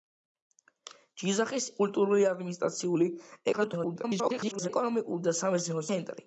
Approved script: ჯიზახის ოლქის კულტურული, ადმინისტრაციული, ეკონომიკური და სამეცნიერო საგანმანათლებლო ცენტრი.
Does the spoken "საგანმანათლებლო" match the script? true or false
false